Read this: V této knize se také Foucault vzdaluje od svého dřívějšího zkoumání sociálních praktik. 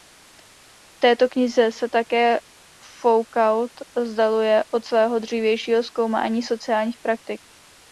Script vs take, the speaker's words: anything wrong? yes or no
no